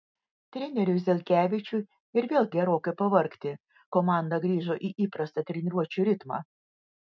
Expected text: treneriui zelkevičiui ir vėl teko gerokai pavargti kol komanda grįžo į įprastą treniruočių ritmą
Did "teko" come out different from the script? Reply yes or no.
yes